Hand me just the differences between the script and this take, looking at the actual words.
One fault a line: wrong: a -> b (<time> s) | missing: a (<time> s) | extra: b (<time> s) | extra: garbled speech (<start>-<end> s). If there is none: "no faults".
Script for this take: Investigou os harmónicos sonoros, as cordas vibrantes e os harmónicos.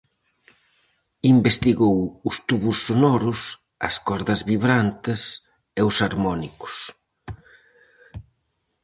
wrong: harmónicos -> tubos (2.5 s)